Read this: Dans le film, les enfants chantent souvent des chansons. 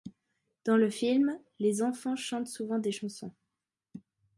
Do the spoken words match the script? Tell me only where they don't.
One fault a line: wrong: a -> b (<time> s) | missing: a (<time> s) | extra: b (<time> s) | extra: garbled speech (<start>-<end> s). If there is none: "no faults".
no faults